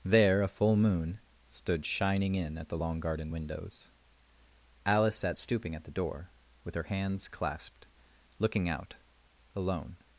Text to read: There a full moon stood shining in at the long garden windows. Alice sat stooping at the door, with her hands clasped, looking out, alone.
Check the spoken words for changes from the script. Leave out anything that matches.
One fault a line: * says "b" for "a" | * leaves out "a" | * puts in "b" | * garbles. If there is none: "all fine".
all fine